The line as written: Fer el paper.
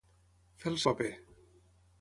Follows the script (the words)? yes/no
yes